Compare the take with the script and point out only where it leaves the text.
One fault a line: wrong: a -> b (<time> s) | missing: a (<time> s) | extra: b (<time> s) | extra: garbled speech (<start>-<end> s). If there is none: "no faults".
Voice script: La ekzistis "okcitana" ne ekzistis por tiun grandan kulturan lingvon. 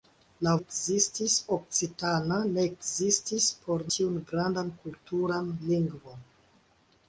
no faults